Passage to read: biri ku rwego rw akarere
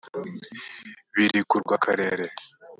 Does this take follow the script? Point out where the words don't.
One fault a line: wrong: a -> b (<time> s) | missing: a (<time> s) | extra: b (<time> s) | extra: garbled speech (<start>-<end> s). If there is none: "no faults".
missing: rwego (1.6 s)